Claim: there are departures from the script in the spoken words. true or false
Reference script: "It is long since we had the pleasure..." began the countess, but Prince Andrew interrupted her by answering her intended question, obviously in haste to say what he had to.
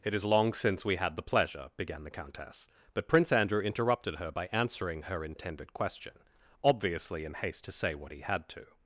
false